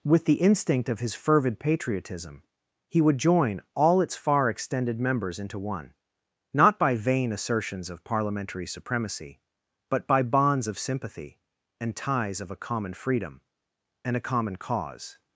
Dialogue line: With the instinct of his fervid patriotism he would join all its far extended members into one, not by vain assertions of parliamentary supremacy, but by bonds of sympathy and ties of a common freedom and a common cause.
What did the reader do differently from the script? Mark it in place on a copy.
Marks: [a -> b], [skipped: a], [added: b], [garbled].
With the instinct of his fervid patriotism he would join all its far extended members into one, not by vain assertions of parliamentary supremacy, but by bonds of sympathy and ties of a common freedom and a common cause.